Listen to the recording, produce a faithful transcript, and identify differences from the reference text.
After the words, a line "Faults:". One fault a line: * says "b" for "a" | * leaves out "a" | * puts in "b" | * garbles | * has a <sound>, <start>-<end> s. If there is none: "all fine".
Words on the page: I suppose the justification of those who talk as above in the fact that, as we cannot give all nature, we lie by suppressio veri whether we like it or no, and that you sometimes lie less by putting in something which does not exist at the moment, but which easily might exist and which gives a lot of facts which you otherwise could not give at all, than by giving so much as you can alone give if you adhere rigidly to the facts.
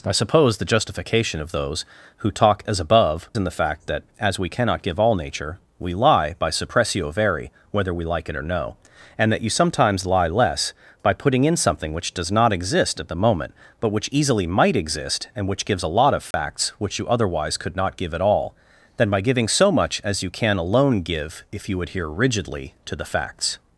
I suppose the justification of those who talk as above in the fact that, as we cannot give all nature, we lie by suppressio veri whether we like it or no, and that you sometimes lie less by putting in something which does not exist at the moment, but which easily might exist and which gives a lot of facts which you otherwise could not give at all, than by giving so much as you can alone give if you adhere rigidly to the facts.
Faults:
* has a dropout, 16.3-16.3 s